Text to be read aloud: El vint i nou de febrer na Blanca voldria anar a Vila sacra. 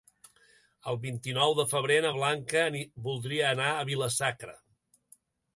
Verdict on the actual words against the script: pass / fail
pass